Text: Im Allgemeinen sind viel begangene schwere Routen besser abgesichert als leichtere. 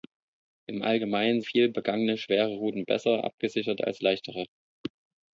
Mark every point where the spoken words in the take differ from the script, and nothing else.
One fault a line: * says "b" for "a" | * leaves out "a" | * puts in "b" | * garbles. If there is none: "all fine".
* leaves out "sind"